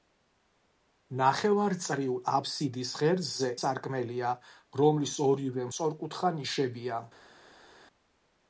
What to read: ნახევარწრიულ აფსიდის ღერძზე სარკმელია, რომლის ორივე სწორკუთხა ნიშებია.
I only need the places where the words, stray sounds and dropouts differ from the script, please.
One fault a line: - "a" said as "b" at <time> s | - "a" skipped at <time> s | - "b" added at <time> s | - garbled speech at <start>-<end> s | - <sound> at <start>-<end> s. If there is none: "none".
none